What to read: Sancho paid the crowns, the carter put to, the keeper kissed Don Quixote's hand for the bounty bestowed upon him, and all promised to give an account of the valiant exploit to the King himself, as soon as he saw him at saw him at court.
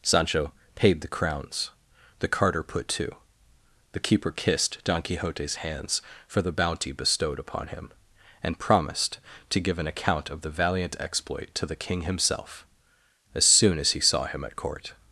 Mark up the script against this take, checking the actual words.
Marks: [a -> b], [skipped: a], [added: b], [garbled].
Sancho paid the crowns, the carter put to, the keeper kissed Don Quixote's [hand -> hands] for the bounty bestowed upon him, and [skipped: all] promised to give an account of the valiant exploit to the King himself, as soon as he saw him at [skipped: saw him at] court.